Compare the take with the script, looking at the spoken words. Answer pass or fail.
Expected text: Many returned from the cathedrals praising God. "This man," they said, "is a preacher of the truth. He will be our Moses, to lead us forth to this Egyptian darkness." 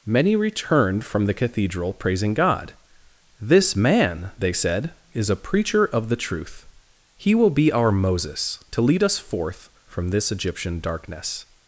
fail